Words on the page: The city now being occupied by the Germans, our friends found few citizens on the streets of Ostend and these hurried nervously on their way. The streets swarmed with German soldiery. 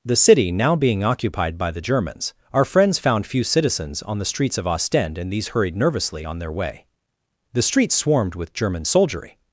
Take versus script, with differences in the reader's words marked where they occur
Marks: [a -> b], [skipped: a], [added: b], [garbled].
The city now being occupied by the Germans, our friends found few citizens on the streets of Ostend and these hurried nervously on their way. The streets swarmed with German soldiery.